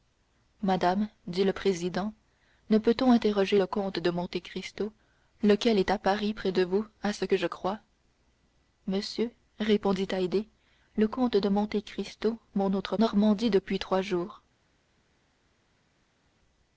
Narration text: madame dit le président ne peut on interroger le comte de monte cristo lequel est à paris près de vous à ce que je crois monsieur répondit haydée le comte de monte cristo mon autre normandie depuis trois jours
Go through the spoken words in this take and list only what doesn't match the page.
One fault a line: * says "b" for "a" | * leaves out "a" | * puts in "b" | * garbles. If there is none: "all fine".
all fine